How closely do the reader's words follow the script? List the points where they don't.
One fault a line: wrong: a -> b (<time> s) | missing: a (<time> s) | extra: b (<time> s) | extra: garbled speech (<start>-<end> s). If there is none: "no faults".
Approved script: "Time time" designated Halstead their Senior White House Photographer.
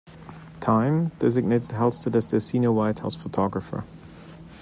missing: time (1.1 s)
extra: as (2.1 s)